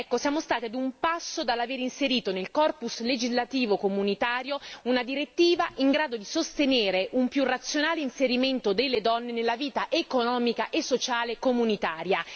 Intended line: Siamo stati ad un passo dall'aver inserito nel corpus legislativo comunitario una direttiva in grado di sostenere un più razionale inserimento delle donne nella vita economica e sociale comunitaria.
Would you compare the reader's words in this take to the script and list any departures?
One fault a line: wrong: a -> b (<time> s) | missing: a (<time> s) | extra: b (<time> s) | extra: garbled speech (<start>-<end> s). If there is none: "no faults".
no faults